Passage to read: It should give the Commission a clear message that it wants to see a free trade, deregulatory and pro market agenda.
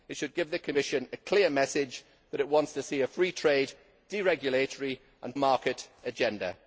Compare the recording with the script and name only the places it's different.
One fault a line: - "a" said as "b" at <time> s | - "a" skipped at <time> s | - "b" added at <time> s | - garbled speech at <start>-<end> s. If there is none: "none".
- "pro" skipped at 5.4 s